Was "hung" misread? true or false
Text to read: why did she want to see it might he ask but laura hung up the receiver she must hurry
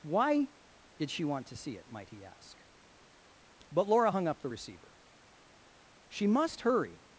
false